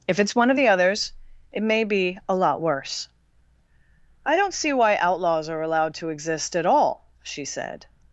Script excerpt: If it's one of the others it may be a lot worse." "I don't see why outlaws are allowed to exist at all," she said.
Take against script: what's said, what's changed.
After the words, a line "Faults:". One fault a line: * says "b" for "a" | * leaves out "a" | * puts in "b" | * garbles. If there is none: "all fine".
If it's one of the others it may be a lot worse." "I don't see why outlaws are allowed to exist at all," she said.
Faults:
all fine